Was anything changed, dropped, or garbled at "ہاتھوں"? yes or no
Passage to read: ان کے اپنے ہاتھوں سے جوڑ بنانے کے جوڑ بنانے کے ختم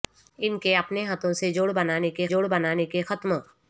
no